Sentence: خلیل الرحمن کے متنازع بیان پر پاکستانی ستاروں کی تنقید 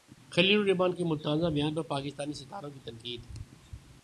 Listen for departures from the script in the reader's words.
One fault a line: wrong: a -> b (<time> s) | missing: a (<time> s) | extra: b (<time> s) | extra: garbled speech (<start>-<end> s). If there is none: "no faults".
no faults